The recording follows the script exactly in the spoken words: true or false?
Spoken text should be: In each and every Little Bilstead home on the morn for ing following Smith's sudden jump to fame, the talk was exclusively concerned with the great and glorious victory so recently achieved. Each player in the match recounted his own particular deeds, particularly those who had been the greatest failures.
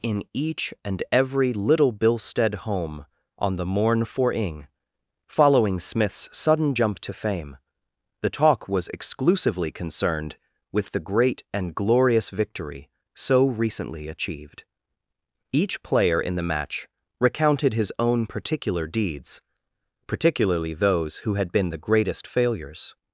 true